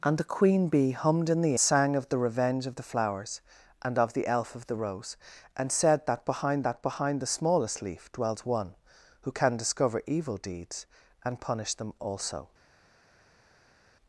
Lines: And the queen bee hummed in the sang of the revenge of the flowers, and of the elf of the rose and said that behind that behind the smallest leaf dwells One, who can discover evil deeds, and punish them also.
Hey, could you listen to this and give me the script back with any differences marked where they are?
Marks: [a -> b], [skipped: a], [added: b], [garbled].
And the queen bee hummed in the sang of the revenge of the flowers, and of the elf of the rose and said that behind that behind the smallest leaf dwells One, who can discover evil deeds, and punish them also.